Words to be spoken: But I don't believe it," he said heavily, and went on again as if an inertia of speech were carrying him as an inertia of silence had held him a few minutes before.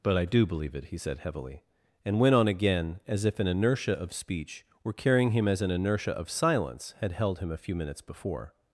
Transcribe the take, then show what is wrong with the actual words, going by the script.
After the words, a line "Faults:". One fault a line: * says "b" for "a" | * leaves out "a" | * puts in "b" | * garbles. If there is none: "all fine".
But I do believe it," he said heavily, and went on again as if an inertia of speech were carrying him as an inertia of silence had held him a few minutes before.
Faults:
* says "do" for "don't"